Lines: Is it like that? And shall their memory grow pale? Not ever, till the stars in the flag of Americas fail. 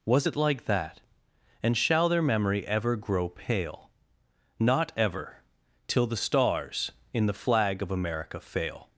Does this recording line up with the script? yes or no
no